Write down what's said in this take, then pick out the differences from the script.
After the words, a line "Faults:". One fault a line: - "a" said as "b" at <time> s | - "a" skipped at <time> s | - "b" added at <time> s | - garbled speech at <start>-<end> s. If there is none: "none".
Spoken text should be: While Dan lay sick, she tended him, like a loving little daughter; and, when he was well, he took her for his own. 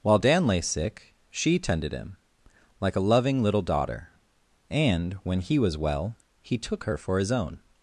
While Dan lay sick, she tended him, like a loving little daughter; and, when he was well, he took her for his own.
Faults:
none